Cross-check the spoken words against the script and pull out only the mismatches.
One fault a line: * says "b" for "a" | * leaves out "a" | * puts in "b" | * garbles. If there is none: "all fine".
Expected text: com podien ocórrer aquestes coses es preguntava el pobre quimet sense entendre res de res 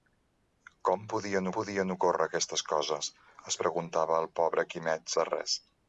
* puts in "podien"
* leaves out "sense entendre res"